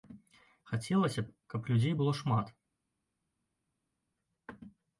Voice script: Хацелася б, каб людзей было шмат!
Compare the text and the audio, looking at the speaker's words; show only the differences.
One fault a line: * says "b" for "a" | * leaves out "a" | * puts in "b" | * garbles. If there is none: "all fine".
all fine